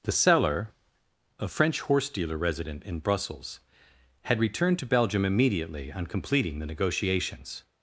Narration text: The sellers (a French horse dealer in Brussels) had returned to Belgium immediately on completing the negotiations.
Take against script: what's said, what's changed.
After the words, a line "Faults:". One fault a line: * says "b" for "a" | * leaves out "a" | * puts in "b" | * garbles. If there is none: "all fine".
The seller (a French horse dealer resident in Brussels) had returned to Belgium immediately on completing the negotiations.
Faults:
* says "seller" for "sellers"
* puts in "resident"